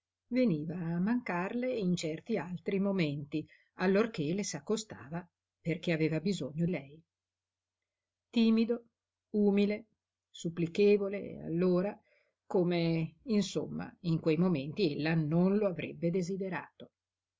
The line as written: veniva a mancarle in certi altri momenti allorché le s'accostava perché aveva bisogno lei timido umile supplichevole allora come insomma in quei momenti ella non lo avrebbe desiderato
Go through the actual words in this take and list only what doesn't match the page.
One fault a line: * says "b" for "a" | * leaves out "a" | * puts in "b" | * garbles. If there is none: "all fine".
all fine